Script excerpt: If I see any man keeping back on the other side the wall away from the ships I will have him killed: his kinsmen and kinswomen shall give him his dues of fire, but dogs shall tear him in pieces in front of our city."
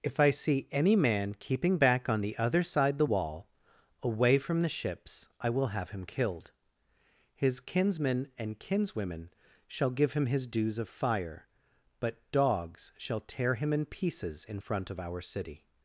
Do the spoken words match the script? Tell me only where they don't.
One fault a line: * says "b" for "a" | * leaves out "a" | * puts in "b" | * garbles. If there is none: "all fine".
all fine